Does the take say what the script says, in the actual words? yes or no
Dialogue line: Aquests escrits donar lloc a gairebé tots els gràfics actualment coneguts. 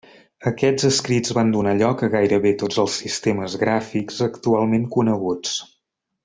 no